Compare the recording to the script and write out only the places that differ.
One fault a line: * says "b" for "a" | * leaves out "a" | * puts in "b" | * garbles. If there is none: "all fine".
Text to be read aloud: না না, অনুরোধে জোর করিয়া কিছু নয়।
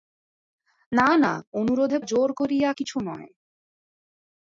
all fine